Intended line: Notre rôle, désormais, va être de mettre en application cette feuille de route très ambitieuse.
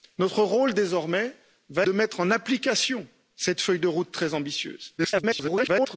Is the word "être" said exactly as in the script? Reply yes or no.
no